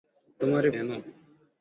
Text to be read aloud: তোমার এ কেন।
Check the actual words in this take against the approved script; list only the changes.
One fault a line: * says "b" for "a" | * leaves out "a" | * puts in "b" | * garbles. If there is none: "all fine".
all fine